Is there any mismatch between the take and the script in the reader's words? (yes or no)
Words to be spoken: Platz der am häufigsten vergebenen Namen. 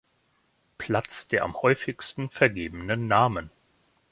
no